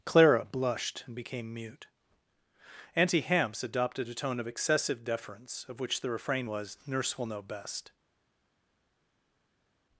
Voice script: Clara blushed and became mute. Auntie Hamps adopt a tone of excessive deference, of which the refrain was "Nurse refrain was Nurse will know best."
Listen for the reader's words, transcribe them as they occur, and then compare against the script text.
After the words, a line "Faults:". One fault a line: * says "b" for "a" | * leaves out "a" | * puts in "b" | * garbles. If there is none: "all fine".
Clara blushed and became mute. Auntie Hamps adopted a tone of excessive deference, of which the refrain was "Nurse will know best."
Faults:
* says "adopted" for "adopt"
* leaves out "refrain was Nurse"